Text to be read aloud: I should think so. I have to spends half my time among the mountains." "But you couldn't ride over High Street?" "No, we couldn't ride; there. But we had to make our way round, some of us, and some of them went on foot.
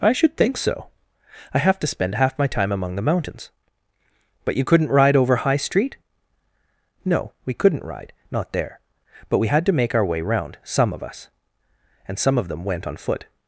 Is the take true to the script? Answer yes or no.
no